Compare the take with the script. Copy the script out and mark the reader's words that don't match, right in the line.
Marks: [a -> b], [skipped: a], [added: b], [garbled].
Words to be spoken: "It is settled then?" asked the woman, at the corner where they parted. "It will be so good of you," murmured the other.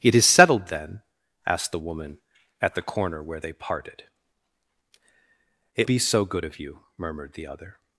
"It is settled then?" asked the woman, at the corner where they parted. "It [skipped: will] be so good of you," murmured the other.